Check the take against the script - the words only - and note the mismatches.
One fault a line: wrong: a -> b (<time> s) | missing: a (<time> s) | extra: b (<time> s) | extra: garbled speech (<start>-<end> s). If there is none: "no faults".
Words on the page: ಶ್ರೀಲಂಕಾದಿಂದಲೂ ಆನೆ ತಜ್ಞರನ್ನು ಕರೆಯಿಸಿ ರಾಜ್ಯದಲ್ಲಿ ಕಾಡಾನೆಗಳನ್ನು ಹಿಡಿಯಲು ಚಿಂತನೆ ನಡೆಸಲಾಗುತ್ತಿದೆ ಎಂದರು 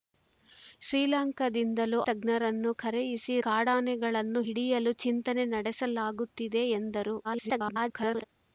missing: ಆನೆ (2.0 s)
missing: ರಾಜ್ಯದಲ್ಲಿ (3.4 s)
extra: garbled speech (7.2-8.2 s)